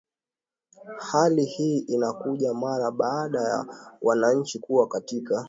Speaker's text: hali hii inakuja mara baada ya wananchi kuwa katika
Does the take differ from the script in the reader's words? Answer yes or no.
no